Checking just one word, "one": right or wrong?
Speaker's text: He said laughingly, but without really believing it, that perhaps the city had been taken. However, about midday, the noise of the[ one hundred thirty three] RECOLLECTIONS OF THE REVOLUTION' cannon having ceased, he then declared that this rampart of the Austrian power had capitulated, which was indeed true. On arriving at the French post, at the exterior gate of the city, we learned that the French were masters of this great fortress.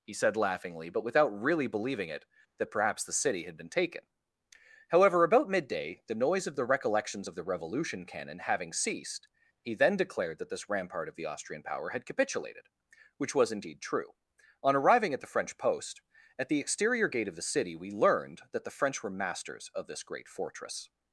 wrong